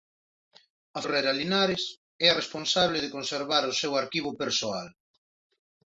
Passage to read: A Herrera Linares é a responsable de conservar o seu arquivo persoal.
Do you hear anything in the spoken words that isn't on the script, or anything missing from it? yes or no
no